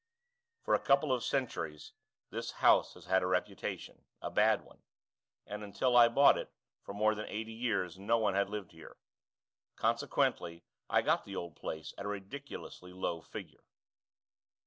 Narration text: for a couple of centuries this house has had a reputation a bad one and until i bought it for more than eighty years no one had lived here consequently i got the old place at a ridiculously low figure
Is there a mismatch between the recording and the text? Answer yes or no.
no